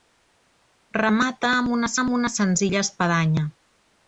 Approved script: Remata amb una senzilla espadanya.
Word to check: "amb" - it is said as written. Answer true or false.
true